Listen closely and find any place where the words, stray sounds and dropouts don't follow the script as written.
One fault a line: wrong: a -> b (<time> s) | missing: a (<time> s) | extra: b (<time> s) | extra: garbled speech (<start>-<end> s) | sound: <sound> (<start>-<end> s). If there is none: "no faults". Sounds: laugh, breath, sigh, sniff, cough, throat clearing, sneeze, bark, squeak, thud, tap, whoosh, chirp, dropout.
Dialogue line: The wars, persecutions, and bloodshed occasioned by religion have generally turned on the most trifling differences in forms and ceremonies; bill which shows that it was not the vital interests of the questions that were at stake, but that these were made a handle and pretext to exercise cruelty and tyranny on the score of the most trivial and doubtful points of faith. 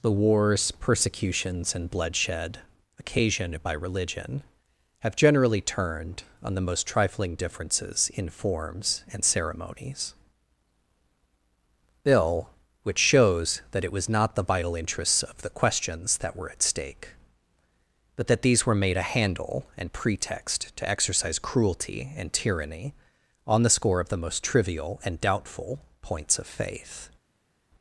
no faults